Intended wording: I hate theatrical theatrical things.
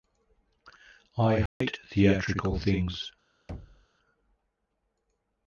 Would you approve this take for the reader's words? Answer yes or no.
no